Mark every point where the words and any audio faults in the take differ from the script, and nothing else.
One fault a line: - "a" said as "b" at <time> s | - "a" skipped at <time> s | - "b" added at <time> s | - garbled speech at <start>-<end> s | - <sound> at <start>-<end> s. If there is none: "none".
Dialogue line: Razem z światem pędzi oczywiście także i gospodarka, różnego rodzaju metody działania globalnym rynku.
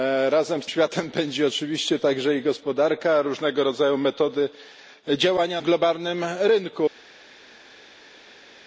none